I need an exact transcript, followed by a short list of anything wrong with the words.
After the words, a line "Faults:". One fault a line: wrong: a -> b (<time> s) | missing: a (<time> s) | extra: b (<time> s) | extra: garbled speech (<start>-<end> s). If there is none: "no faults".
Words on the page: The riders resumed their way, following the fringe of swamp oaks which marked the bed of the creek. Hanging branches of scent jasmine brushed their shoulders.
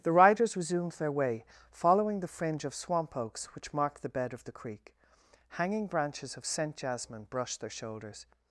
The riders resumed their way, following the fringe of swamp oaks which marked the bed of the creek. Hanging branches of scent jasmine brushed their shoulders.
Faults:
no faults